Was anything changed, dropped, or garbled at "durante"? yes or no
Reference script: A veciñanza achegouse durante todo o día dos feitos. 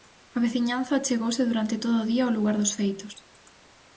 no